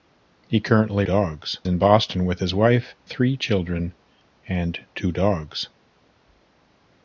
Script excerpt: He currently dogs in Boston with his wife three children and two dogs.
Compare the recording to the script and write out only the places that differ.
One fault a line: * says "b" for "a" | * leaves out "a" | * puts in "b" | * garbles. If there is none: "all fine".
all fine